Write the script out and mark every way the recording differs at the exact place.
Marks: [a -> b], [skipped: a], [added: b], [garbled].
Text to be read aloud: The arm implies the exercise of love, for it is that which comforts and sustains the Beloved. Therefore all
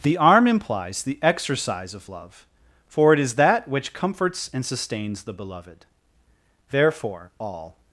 The arm implies the exercise of love, for it is that which comforts and sustains the Beloved. Therefore all